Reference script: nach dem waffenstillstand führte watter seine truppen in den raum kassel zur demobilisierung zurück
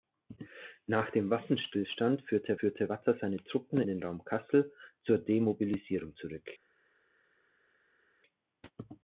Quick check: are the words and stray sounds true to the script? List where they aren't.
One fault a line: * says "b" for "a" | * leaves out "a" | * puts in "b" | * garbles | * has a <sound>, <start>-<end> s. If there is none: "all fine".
* puts in "führte"
* leaves out "in"